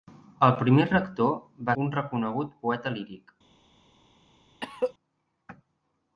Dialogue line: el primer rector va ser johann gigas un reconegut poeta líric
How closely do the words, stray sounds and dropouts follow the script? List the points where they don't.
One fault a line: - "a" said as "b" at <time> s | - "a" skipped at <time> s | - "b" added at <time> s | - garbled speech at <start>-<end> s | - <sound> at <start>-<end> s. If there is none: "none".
- "ser johann gigas" skipped at 1.8 s
- cough at 4.6-4.9 s